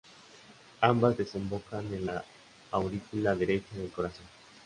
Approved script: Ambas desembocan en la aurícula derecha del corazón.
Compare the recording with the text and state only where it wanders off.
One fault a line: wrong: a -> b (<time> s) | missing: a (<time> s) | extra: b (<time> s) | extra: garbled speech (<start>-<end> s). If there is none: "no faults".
no faults